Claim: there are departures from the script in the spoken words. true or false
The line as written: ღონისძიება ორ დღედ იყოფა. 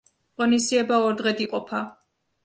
false